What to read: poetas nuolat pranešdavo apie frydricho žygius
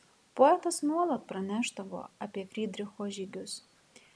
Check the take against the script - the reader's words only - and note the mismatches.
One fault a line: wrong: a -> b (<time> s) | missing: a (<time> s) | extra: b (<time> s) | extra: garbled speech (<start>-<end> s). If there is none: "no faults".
no faults